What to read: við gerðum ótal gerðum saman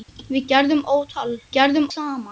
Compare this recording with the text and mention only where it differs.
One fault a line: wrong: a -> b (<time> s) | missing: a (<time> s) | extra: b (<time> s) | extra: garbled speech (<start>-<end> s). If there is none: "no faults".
no faults